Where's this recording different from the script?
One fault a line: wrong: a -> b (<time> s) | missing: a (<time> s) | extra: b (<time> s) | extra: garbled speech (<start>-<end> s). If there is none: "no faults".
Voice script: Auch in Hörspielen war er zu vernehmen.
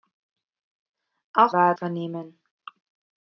missing: in Hörspielen (1.5 s)
missing: zu (1.8 s)